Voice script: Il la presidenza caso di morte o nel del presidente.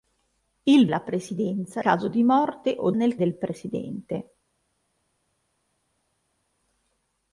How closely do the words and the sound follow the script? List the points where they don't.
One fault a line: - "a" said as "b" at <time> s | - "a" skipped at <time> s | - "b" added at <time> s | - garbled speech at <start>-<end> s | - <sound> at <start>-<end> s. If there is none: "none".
none